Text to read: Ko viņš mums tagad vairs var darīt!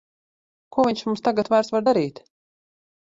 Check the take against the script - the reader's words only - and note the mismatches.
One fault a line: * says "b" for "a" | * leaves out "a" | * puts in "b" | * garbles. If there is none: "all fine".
all fine